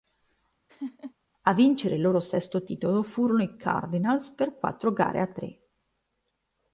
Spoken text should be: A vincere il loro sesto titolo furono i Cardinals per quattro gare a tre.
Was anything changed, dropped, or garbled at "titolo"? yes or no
no